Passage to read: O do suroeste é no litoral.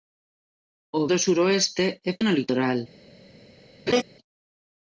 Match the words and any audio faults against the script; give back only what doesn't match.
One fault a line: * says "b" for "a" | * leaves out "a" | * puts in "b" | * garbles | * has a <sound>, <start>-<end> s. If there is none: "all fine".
* has a laugh, 3.9-4.0 s